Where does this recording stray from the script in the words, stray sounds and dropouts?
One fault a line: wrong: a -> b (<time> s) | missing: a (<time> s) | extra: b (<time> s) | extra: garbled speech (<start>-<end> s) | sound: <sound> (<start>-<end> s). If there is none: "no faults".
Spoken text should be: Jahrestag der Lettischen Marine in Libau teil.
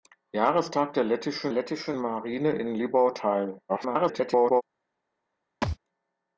extra: Lettischen (1.5 s)
extra: garbled speech (3.7-4.6 s)
sound: thud (5.6-5.8 s)